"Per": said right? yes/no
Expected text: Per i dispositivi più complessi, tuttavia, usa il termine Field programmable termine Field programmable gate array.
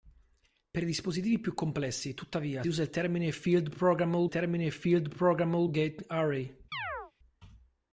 yes